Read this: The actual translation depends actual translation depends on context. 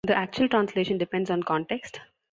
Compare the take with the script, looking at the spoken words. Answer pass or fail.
fail